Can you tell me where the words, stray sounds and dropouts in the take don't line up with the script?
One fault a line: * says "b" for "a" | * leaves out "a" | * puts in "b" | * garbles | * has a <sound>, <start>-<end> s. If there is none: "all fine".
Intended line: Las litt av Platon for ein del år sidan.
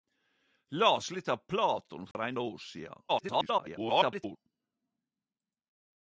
* has a dropout, 2.1-2.1 s
* leaves out "del"
* garbles